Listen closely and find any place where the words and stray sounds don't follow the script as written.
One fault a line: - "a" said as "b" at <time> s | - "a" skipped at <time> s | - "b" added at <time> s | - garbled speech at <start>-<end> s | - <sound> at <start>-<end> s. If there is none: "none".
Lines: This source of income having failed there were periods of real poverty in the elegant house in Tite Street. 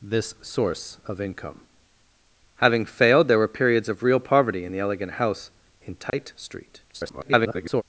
- dropout at 6.1-6.1 s
- garbled speech at 6.9-7.8 s